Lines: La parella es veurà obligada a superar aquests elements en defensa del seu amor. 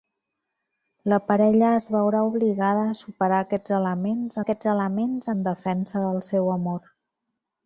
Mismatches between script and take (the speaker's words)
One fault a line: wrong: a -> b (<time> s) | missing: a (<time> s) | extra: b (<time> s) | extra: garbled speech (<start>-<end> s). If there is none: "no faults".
extra: aquests elements (4.4 s)